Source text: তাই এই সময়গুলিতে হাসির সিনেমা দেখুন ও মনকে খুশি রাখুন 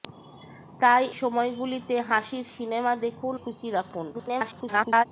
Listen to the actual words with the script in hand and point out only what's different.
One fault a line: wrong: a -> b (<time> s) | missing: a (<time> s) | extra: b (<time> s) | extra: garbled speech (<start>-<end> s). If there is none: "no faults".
missing: এই (1.0 s)
missing: ও মনকে (3.3 s)
extra: garbled speech (4.1-5.0 s)